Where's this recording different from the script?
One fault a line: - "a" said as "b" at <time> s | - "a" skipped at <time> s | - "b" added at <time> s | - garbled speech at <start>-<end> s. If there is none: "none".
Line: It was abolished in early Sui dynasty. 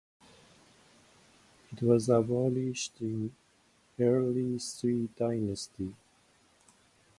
none